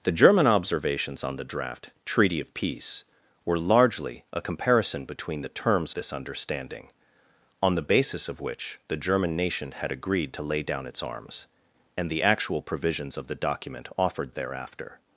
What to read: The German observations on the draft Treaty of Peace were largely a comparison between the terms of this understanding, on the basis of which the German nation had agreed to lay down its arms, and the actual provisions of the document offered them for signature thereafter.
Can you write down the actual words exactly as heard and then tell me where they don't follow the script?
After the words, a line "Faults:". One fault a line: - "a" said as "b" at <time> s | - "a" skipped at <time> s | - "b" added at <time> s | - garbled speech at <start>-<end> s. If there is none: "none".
The German observations on the draft Treaty of Peace were largely a comparison between the terms this understanding, on the basis of which the German nation had agreed to lay down its arms, and the actual provisions of the document offered thereafter.
Faults:
- "of" skipped at 5.9 s
- "them for signature" skipped at 14.3 s